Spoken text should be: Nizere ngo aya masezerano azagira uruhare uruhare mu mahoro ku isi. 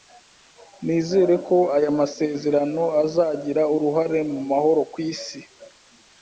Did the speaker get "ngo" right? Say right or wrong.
wrong